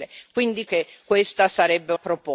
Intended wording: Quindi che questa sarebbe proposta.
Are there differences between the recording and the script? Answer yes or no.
no